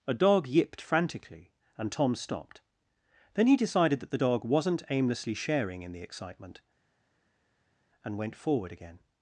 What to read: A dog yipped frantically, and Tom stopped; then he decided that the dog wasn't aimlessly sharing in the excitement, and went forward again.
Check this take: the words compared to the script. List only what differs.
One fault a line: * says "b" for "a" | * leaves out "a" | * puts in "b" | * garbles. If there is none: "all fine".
all fine